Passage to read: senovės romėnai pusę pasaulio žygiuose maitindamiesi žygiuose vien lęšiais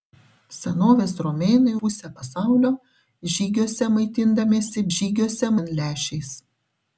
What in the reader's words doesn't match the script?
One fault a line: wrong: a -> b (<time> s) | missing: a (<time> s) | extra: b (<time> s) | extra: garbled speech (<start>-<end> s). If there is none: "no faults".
no faults